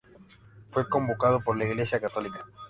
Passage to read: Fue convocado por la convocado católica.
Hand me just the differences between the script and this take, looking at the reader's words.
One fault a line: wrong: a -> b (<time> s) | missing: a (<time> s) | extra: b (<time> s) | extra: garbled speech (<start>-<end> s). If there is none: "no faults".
wrong: convocado -> iglesia (1.6 s)